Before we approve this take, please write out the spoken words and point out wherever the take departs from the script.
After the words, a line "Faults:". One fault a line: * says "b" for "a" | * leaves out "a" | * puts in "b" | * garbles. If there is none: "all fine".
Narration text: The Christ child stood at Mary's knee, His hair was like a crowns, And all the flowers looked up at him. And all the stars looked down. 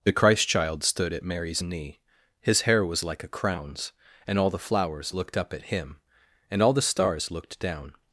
The Christ child stood at Mary's knee, His hair was like a crowns, And all the flowers looked up at him. And all the stars looked down.
Faults:
all fine